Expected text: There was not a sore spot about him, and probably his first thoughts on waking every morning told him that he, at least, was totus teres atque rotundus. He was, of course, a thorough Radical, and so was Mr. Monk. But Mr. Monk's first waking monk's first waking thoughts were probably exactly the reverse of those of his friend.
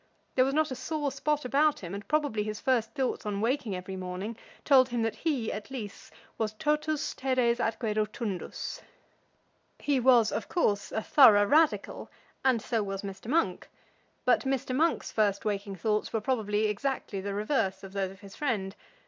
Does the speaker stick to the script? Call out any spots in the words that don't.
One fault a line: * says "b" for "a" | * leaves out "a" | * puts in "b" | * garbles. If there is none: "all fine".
* leaves out "monk's first waking"